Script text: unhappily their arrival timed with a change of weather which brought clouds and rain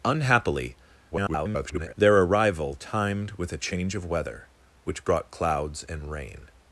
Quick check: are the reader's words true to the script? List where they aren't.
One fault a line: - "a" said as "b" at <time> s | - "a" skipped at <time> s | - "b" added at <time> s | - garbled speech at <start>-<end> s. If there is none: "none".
- garbled speech at 1.1-1.9 s